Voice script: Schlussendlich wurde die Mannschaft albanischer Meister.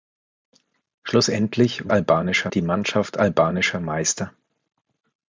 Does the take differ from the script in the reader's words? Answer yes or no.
yes